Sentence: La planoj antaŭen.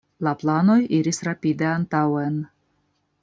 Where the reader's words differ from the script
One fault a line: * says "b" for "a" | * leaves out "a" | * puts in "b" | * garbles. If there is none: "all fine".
* puts in "iris rapide"